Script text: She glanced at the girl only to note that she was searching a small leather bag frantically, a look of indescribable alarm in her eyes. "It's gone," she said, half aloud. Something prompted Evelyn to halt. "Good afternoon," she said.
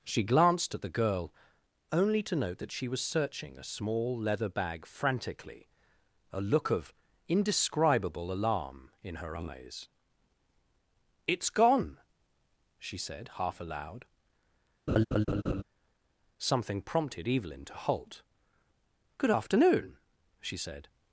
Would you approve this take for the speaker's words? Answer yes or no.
yes